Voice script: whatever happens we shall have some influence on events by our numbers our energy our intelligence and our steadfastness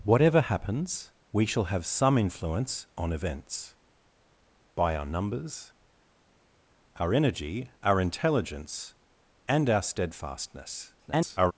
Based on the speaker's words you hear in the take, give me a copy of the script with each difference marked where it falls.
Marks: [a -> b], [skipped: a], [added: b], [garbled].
whatever happens we shall have some influence on events by our numbers our energy our intelligence and our steadfastness [garbled]